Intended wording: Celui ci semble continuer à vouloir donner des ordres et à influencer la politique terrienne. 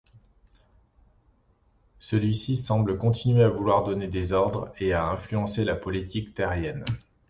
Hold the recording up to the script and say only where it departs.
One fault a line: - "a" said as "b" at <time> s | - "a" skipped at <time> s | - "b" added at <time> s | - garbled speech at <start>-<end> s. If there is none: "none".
none